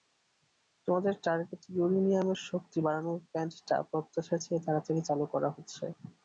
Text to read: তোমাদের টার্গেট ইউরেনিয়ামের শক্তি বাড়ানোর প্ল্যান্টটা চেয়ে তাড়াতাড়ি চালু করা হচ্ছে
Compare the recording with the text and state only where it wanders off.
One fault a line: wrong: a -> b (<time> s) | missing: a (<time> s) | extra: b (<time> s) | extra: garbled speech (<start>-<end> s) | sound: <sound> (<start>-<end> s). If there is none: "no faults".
extra: প্রত্যাশার (3.9 s)